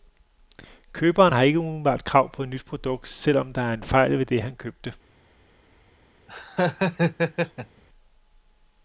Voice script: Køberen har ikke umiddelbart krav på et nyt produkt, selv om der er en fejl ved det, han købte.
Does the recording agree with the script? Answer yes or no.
yes